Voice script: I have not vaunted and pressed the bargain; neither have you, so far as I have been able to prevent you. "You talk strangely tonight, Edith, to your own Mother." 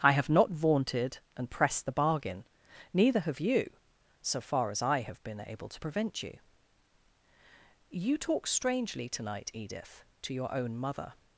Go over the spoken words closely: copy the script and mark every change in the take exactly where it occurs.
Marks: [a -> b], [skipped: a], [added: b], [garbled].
I have not vaunted and pressed the bargain; neither have you, so far as I have been able to prevent you. "You talk strangely tonight, Edith, to your own Mother."